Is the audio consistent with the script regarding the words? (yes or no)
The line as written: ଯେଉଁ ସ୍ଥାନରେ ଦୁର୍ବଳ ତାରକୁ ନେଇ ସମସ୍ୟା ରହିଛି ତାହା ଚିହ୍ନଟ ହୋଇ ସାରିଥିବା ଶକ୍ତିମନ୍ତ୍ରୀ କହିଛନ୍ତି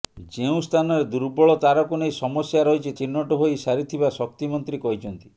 no